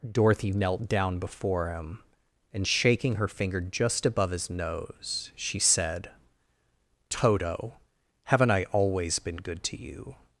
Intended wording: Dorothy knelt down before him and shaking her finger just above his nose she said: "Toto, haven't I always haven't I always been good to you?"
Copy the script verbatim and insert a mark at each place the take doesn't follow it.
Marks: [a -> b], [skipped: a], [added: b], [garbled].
Dorothy knelt down before him and shaking her finger just above his nose she said: "Toto, haven't I always [skipped: haven't I always] been good to you?"